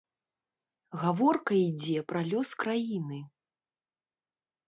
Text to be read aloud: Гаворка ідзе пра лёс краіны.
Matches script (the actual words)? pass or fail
pass